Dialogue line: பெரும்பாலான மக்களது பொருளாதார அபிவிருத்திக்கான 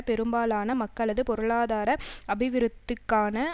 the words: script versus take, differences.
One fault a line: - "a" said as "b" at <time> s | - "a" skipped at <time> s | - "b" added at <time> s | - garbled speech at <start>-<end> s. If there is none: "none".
none